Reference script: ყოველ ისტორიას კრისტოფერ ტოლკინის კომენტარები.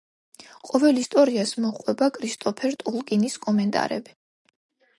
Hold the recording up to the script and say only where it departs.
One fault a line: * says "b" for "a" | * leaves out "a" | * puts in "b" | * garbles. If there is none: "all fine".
* puts in "მოჰყვება"